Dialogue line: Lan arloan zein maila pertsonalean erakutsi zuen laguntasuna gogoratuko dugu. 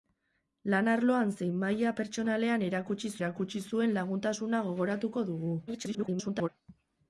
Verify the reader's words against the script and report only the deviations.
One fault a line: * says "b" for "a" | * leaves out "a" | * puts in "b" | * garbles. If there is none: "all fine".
* puts in "erakutsi"
* garbles